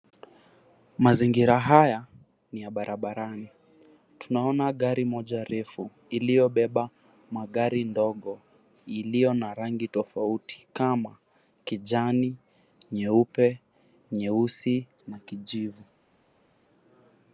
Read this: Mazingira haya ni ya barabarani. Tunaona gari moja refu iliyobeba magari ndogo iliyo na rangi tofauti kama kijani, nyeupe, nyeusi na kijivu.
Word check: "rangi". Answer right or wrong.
right